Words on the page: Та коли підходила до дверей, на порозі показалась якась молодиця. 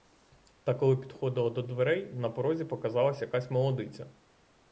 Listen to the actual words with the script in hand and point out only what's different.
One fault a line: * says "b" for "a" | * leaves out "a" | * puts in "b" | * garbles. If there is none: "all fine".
all fine